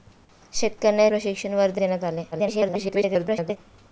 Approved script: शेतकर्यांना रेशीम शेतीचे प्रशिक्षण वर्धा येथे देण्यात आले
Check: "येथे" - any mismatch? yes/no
yes